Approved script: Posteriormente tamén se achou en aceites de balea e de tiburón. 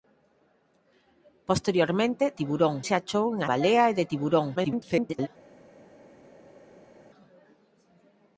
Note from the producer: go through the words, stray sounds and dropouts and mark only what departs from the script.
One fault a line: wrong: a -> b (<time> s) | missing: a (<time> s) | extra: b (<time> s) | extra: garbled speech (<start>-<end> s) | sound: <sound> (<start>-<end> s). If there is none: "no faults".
wrong: tamén -> tiburón (2.4 s)
missing: aceites de (3.4 s)
extra: garbled speech (4.6-5.3 s)